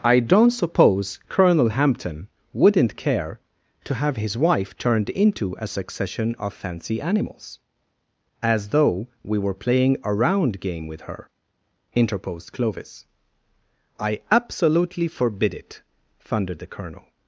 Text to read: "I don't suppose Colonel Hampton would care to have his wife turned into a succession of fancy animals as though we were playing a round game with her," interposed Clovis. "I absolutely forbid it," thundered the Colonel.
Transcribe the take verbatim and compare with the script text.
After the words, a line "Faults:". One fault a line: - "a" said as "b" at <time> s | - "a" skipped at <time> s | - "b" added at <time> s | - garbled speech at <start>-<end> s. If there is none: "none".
"I don't suppose Colonel Hampton wouldn't care to have his wife turned into a succession of fancy animals as though we were playing a round game with her," interposed Clovis. "I absolutely forbid it," thundered the Colonel.
Faults:
- "would" said as "wouldn't" at 2.5 s